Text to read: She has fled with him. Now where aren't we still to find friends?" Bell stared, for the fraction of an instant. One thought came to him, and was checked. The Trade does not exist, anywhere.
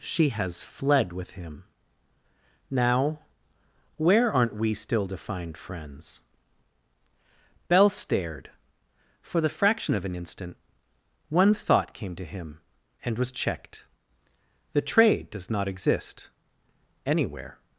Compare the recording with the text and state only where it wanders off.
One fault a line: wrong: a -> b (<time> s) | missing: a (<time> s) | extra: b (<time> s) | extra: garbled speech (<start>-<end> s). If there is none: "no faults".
no faults